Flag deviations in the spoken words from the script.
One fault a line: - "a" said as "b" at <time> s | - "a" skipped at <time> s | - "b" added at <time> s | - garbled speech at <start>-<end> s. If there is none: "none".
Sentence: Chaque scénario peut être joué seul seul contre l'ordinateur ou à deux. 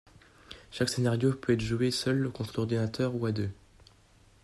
- "seul" skipped at 2.3 s